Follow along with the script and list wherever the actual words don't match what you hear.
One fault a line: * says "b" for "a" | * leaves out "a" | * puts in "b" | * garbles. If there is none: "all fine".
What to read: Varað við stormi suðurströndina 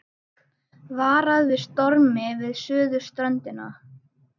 * puts in "við"